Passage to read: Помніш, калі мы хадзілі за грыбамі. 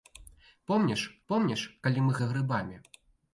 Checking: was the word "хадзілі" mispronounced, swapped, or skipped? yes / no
yes